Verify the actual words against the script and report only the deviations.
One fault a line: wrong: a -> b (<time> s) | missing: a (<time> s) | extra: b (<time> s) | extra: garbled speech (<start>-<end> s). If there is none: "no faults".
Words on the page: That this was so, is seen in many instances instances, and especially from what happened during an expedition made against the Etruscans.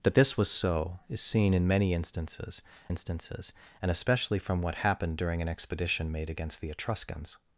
no faults